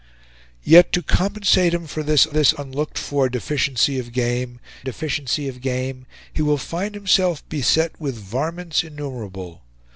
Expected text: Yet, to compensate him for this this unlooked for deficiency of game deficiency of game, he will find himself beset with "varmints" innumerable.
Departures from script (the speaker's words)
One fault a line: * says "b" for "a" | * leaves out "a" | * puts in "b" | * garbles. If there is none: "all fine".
all fine